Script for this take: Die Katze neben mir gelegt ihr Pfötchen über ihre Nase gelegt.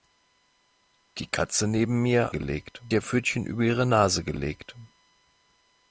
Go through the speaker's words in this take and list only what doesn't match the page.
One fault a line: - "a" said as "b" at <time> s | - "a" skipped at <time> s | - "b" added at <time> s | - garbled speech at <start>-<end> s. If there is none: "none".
none